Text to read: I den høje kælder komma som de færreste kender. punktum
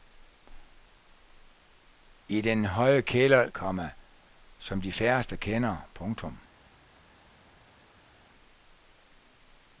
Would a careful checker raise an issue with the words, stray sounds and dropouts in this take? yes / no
no